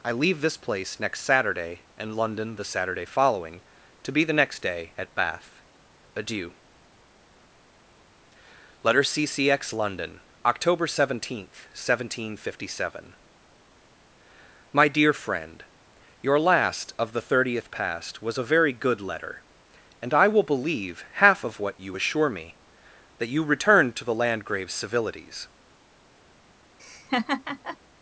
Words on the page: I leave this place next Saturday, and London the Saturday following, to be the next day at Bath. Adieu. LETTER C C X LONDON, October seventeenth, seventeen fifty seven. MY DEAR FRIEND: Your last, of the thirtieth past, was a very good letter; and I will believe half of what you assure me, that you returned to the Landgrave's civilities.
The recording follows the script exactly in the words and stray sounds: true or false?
false